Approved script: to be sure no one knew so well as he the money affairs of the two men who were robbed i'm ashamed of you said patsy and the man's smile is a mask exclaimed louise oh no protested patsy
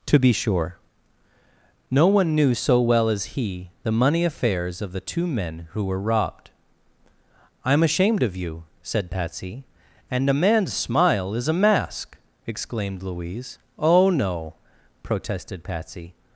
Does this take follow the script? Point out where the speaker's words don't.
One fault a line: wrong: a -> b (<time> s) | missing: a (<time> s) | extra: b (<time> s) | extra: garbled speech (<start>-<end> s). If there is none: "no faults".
wrong: the -> a (10.3 s)